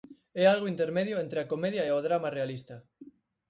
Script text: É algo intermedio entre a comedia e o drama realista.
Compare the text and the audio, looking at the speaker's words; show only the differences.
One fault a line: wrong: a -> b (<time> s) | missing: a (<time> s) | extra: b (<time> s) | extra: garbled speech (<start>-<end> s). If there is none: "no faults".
no faults